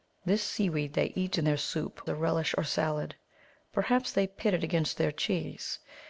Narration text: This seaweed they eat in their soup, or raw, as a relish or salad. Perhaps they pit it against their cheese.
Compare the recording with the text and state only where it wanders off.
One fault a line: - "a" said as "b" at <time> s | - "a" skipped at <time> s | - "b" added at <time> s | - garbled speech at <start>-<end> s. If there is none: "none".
- "or raw as" skipped at 2.0 s